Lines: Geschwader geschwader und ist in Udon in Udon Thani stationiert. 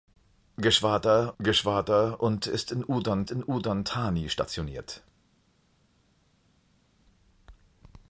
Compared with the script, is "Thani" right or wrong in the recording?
right